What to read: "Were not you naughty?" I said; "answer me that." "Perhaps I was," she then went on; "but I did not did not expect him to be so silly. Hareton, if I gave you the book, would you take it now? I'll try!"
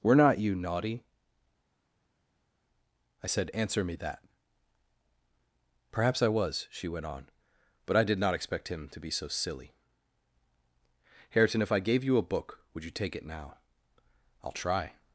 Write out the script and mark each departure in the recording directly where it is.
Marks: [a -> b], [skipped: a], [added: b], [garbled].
"Were not you naughty?" I said; "answer me that." "Perhaps I was," she [skipped: then] went on; "but I did not [skipped: did not] expect him to be so silly. Hareton, if I gave you [the -> a] book, would you take it now? I'll try!"